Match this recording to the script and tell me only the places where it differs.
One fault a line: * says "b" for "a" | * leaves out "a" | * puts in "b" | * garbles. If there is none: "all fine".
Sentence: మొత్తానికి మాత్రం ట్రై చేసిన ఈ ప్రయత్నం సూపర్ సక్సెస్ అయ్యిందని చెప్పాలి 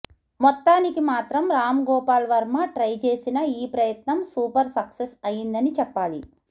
* puts in "రామ్ గోపాల్ వర్మ"